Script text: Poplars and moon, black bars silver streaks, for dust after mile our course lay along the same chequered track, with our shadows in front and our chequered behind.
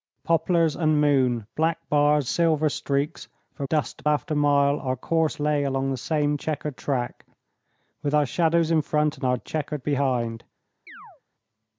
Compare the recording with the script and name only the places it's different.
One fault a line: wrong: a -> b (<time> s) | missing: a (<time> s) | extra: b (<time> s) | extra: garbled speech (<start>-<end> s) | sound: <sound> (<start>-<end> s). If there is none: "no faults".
sound: chirp (10.9-11.2 s)